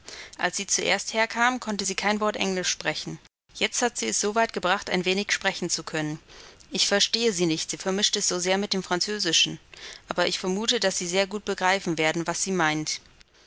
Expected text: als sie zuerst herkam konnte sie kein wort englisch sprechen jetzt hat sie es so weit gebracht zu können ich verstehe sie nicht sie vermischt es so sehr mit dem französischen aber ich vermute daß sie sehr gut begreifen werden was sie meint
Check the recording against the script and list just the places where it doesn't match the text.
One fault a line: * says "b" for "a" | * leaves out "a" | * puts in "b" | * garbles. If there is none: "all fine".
* puts in "ein wenig sprechen"